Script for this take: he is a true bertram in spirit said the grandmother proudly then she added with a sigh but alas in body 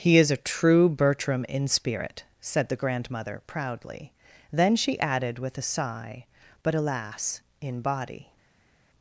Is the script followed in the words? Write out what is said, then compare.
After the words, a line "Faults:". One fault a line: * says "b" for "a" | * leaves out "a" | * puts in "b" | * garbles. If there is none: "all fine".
he is a true bertram in spirit said the grandmother proudly then she added with a sigh but alas in body
Faults:
all fine